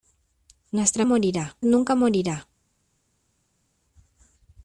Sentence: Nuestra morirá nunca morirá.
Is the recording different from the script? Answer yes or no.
no